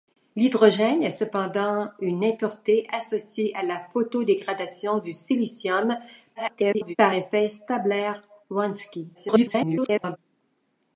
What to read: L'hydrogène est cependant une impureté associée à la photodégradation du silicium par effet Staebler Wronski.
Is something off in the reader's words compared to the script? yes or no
yes